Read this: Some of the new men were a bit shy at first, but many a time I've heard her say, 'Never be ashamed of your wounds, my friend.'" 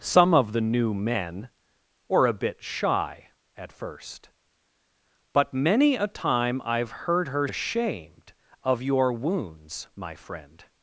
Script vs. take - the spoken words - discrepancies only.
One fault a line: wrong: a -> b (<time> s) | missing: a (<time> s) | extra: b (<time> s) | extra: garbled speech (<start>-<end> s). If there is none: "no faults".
missing: say Never be (7.5 s)